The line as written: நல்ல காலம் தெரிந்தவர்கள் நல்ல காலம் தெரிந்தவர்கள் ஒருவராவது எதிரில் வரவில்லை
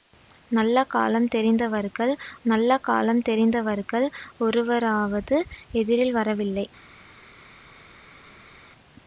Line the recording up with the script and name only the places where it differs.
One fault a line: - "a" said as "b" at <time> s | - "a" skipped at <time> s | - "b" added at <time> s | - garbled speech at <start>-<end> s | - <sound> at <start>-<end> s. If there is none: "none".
none